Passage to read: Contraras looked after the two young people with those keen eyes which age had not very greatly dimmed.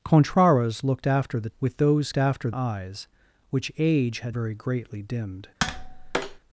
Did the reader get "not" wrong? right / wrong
wrong